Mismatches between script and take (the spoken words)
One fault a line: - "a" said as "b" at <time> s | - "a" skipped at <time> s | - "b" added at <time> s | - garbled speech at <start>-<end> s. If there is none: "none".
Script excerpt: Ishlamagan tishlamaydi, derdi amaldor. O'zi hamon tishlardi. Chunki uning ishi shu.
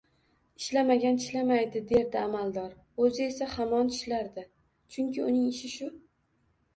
- "esa" added at 3.2 s